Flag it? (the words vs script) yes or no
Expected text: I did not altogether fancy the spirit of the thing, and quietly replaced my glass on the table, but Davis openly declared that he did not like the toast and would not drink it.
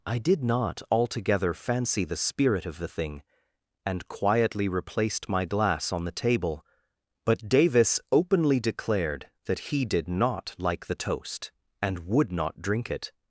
no